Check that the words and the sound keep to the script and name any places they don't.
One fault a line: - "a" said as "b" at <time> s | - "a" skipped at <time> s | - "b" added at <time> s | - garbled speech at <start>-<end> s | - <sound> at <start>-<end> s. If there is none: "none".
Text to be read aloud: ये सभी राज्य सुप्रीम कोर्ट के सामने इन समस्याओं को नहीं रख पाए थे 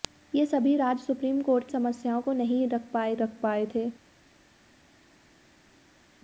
- "के सामने इन" skipped at 1.7 s
- "रख पाए" added at 3.2 s